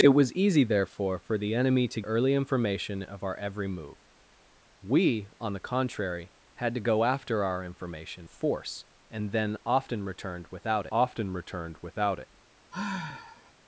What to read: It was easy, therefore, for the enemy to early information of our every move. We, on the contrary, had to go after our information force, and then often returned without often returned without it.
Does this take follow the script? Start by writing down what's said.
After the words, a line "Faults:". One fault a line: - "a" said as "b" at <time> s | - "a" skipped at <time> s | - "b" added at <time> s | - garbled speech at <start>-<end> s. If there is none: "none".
It was easy, therefore, for the enemy to early information of our every move. We, on the contrary, had to go after our information force, and then often returned without often returned without it.
Faults:
none